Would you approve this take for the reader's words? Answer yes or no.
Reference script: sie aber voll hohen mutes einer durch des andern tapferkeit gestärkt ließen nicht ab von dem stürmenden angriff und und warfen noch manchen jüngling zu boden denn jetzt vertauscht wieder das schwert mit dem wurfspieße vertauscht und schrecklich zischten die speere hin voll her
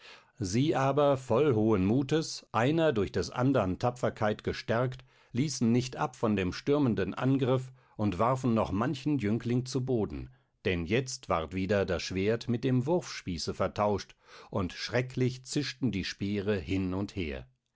no